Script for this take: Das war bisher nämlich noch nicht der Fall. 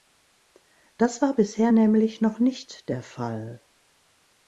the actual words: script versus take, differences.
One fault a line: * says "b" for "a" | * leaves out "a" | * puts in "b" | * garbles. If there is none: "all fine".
all fine